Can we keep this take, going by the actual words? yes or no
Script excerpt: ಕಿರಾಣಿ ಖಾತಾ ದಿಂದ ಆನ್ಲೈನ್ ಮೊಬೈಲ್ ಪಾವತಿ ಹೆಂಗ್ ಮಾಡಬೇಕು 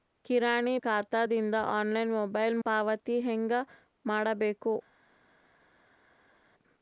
yes